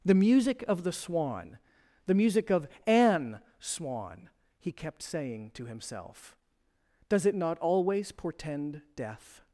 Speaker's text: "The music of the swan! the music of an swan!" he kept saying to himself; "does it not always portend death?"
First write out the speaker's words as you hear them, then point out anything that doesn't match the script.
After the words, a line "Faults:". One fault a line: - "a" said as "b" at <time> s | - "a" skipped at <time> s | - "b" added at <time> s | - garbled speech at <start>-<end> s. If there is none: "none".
"The music of the swan! the music of an swan!" he kept saying to himself; "does it not always portend death?"
Faults:
none